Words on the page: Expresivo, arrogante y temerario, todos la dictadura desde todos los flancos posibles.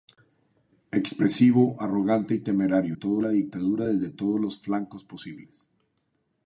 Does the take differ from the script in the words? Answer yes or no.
no